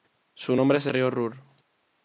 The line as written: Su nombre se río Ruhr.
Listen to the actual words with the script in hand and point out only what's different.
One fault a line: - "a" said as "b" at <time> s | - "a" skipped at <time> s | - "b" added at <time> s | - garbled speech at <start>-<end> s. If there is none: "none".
none